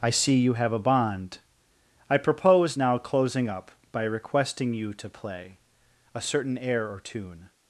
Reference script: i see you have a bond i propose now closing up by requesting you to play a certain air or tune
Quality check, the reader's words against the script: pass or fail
pass